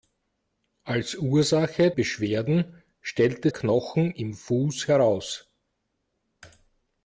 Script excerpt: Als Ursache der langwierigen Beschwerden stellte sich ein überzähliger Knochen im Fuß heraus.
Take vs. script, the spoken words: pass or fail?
fail